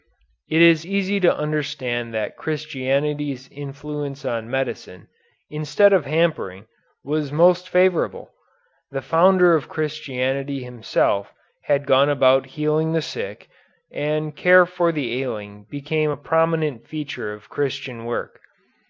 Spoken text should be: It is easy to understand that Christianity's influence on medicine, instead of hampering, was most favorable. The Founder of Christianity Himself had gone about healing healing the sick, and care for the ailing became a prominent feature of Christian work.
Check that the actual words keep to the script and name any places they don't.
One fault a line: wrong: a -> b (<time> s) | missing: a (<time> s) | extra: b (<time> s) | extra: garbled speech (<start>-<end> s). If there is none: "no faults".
missing: healing (12.9 s)